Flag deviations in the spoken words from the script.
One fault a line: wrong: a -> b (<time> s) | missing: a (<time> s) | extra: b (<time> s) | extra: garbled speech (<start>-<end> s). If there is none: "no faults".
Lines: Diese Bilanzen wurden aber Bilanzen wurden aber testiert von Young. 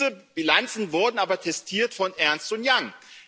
missing: Bilanzen wurden aber (1.4 s)
extra: Ernst (2.2 s)